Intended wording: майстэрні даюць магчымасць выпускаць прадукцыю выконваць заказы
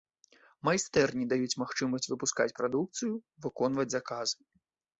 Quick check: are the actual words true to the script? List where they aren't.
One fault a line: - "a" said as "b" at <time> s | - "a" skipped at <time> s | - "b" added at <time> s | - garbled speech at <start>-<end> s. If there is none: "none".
none